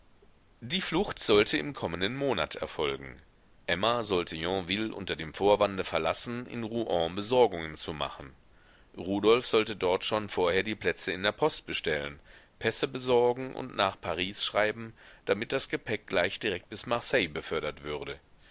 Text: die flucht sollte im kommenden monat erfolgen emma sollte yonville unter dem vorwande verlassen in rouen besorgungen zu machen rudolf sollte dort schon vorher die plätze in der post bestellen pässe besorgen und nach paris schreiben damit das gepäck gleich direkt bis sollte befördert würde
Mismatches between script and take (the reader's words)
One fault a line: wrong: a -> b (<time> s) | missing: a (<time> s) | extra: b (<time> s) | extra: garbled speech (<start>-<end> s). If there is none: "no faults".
wrong: sollte -> marseille (16.9 s)